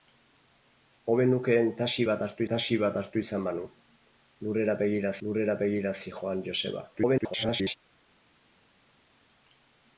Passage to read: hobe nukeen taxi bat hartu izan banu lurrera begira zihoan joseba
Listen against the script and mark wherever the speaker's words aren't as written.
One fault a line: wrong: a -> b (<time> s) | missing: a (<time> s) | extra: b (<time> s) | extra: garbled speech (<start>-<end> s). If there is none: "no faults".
extra: taxi bat hartu (2.5 s)
extra: lurrera begira (5.3 s)
extra: garbled speech (6.9-7.8 s)